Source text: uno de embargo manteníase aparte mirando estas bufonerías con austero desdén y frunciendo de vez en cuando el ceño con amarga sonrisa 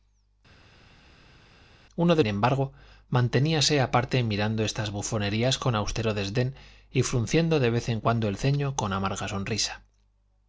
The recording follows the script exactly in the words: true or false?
true